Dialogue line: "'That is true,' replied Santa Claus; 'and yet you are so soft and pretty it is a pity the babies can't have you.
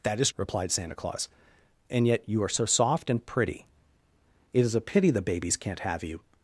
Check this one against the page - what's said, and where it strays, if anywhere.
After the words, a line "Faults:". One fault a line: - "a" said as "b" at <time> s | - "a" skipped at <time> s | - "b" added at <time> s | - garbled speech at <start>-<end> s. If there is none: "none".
"'That is,' replied Santa Claus; 'and yet you are so soft and pretty it is a pity the babies can't have you.
Faults:
- "true" skipped at 0.3 s